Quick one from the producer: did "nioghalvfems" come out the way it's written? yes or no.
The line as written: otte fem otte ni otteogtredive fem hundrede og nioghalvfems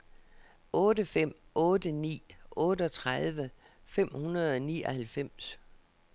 yes